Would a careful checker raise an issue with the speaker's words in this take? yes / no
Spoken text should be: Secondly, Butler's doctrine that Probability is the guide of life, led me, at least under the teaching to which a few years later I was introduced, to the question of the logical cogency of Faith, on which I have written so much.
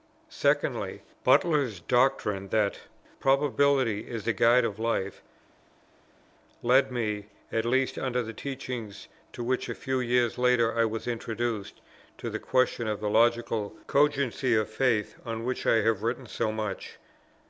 no